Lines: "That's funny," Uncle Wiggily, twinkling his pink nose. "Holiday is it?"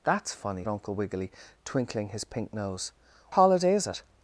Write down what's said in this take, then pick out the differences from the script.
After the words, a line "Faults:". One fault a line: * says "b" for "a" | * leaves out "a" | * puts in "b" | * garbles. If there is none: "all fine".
"That's funny," Uncle Wiggily, twinkling his pink nose. "Holiday is it?"
Faults:
all fine